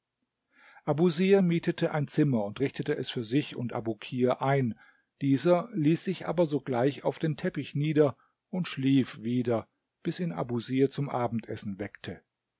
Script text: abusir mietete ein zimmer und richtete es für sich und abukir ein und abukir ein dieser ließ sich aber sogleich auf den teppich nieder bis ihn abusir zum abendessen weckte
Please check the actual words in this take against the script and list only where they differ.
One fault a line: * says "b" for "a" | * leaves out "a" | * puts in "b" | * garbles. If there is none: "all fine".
* leaves out "und abukir ein"
* puts in "und schlief wieder"